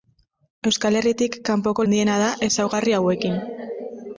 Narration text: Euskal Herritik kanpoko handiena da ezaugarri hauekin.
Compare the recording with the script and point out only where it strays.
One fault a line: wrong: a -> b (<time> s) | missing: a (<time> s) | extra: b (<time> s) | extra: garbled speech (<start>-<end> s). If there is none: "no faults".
no faults